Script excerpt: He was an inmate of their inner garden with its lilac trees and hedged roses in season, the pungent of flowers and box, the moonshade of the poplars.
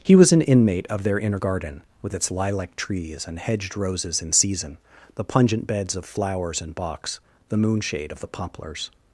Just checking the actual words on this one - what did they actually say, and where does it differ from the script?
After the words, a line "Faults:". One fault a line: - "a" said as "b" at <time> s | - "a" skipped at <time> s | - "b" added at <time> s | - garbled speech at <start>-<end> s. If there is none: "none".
He was an inmate of their inner garden with its lilac trees and hedged roses in season, the pungent beds of flowers and box, the moonshade of the poplars.
Faults:
- "beds" added at 5.7 s